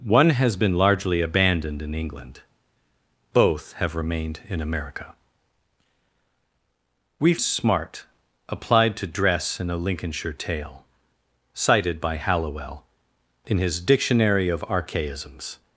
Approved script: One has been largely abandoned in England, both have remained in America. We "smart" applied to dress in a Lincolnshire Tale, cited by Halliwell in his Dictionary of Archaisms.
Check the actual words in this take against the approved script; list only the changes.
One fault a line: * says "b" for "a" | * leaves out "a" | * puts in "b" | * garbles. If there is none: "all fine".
all fine